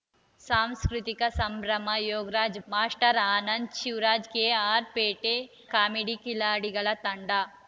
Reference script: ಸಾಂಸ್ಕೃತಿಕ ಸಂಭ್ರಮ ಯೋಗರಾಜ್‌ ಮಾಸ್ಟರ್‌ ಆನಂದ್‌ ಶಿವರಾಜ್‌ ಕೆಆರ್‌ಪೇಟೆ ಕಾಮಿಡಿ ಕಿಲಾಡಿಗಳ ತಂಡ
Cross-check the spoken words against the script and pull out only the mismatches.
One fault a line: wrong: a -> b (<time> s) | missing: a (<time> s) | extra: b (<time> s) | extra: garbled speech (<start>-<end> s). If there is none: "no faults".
no faults